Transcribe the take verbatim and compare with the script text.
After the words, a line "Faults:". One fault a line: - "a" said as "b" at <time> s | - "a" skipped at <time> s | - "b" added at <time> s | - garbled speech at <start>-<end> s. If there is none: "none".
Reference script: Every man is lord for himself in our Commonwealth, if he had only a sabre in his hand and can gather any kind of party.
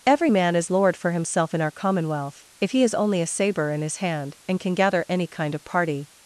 Every man is lord for himself in our Commonwealth, if he has only a sabre in his hand and can gather any kind of party.
Faults:
- "had" said as "has" at 2.8 s